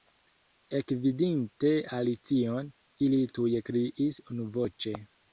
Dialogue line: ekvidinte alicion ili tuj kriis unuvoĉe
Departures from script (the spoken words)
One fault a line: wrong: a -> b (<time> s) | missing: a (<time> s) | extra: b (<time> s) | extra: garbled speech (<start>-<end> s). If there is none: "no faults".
no faults